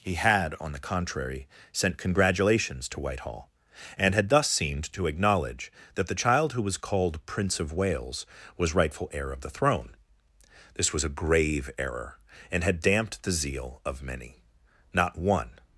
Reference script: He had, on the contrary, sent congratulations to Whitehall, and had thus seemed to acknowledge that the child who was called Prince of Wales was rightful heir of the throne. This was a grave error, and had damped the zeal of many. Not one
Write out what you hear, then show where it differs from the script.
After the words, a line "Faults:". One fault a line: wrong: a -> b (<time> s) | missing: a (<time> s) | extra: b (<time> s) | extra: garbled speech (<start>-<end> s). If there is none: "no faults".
He had, on the contrary, sent congratulations to Whitehall, and had thus seemed to acknowledge that the child who was called Prince of Wales was rightful heir of the throne. This was a grave error, and had damped the zeal of many. Not one
Faults:
no faults